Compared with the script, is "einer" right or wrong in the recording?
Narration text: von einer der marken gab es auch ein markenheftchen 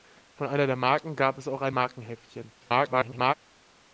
right